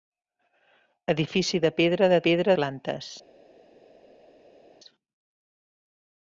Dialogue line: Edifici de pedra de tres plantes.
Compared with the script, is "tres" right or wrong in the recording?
wrong